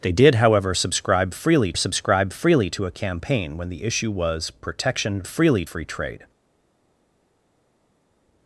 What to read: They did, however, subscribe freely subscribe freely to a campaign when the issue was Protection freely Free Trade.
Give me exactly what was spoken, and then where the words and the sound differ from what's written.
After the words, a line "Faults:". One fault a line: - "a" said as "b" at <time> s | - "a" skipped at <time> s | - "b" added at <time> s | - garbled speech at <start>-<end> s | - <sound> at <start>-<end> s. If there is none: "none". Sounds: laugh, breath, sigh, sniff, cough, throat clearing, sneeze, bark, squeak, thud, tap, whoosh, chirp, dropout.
They did, however, subscribe freely subscribe freely to a campaign when the issue was Protection freely Free Trade.
Faults:
none